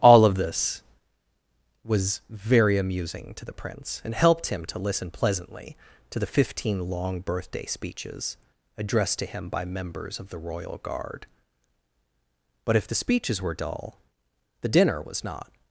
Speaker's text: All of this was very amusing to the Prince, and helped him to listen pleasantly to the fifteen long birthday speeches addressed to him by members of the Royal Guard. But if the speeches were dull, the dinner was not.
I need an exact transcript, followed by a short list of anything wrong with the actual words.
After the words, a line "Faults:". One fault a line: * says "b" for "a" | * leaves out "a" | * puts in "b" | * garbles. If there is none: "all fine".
All of this was very amusing to the Prince, and helped him to listen pleasantly to the fifteen long birthday speeches addressed to him by members of the Royal Guard. But if the speeches were dull, the dinner was not.
Faults:
all fine